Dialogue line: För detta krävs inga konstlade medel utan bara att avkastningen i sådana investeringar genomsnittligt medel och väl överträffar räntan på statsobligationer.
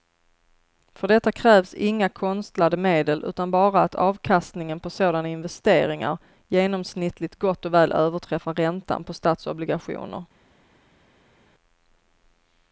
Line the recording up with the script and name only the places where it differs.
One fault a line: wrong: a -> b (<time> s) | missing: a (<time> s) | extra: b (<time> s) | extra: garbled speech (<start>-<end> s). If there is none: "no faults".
wrong: i -> på (4.8 s)
wrong: medel -> gott (7.4 s)